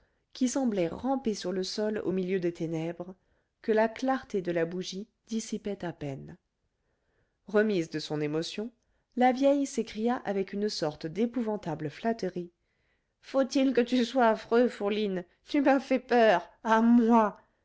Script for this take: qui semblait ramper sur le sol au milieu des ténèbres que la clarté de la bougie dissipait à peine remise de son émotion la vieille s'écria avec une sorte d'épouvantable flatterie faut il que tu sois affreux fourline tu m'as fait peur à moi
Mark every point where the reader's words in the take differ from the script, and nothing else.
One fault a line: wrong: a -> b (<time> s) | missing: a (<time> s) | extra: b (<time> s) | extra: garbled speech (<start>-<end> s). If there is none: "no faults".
no faults